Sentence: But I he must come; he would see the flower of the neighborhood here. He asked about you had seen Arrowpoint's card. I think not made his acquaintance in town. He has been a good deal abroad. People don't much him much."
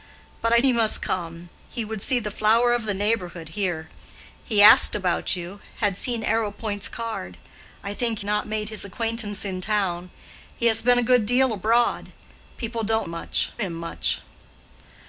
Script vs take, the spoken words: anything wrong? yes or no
no